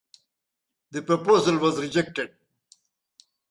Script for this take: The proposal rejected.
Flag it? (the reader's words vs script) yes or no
yes